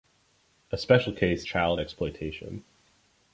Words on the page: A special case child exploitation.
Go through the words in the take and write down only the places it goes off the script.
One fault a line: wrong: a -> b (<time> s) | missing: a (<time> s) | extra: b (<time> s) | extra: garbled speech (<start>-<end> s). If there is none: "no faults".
no faults